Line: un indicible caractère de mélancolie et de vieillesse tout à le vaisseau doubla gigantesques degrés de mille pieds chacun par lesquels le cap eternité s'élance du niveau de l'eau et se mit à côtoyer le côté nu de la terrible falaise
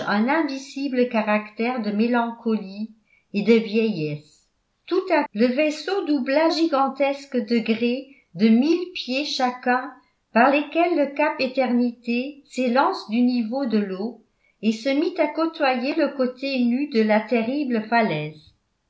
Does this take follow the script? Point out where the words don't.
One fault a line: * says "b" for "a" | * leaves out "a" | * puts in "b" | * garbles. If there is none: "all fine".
all fine